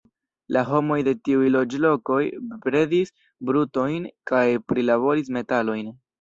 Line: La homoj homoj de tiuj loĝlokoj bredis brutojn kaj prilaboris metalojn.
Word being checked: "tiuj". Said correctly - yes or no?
yes